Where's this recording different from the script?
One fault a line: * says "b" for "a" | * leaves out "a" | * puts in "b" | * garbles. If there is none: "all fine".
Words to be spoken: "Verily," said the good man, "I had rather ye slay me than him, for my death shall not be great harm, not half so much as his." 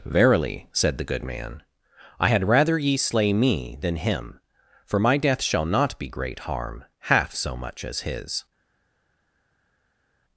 * leaves out "not"